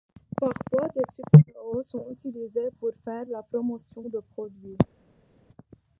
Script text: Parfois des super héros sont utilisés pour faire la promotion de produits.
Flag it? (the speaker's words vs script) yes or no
no